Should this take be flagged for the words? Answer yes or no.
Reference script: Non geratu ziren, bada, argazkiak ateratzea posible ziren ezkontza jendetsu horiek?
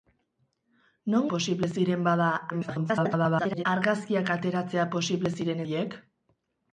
yes